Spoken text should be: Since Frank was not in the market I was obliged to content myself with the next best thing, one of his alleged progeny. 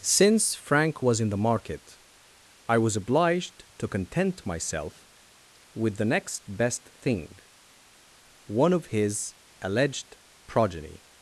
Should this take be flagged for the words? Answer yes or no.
yes